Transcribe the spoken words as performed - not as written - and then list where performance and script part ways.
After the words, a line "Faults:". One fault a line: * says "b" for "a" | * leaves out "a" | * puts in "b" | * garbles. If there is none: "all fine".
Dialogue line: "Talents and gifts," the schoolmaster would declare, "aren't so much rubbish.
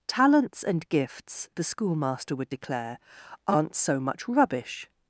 "Talents and gifts," the schoolmaster would declare, "aren't so much rubbish.
Faults:
all fine